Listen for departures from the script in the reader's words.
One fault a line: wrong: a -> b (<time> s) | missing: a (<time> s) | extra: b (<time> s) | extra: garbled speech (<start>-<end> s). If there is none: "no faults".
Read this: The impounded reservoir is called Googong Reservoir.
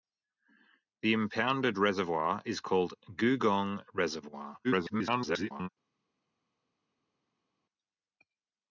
extra: garbled speech (4.6-5.7 s)